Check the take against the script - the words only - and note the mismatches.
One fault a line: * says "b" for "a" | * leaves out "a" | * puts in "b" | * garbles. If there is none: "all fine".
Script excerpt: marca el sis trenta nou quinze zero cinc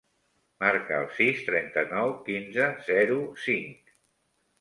all fine